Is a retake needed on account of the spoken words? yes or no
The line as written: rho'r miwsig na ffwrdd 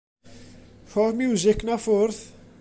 no